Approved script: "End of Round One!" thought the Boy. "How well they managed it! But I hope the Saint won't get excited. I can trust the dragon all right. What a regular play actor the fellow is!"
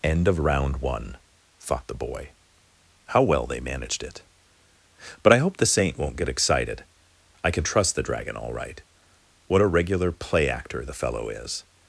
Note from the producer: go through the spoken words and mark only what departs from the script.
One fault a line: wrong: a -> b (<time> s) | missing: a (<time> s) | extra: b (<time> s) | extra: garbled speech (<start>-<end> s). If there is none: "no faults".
no faults